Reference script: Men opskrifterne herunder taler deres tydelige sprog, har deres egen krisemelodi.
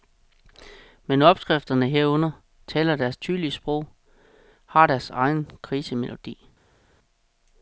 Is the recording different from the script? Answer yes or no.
no